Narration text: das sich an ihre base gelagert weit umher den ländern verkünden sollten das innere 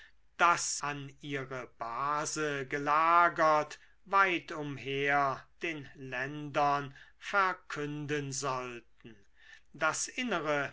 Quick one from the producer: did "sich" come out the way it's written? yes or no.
no